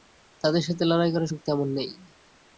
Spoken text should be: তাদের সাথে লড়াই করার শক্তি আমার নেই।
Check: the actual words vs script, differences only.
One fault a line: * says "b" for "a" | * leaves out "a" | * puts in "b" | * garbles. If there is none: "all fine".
all fine